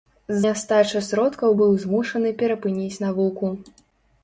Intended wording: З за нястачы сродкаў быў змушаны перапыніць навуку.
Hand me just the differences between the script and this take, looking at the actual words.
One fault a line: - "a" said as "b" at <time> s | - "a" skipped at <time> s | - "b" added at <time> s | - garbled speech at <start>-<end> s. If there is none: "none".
- "за" skipped at 0.4 s